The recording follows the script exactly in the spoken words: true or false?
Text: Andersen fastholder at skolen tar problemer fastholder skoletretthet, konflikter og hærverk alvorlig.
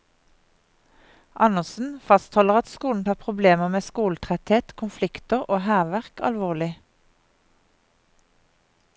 false